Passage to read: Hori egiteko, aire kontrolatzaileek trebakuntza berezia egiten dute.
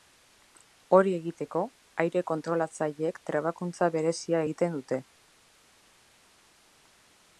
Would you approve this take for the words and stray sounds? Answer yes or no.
yes